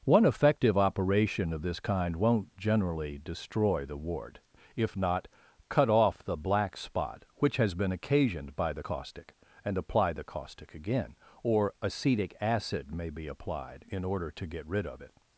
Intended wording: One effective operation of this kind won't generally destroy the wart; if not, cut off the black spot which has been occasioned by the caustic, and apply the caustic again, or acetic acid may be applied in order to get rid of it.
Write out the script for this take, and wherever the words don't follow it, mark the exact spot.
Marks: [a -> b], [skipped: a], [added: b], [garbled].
One effective operation of this kind won't generally destroy the wart; if not, cut off the black spot which has been occasioned by the caustic, and apply the caustic again, or acetic acid may be applied in order to get rid of it.